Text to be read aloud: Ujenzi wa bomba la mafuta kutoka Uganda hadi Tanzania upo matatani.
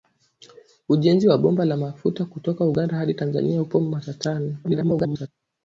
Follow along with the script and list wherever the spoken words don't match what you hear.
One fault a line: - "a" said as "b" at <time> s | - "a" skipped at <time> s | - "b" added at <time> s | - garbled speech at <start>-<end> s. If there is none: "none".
- garbled speech at 4.6-5.3 s